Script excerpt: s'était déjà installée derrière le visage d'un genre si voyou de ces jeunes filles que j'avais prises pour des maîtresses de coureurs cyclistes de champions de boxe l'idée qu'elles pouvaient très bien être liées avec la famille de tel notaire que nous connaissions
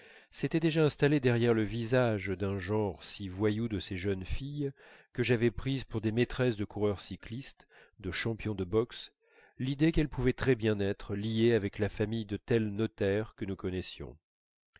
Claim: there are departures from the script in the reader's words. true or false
false